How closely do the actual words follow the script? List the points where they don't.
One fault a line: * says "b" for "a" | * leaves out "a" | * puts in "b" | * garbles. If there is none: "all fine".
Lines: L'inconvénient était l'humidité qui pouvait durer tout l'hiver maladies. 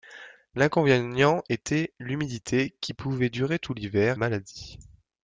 all fine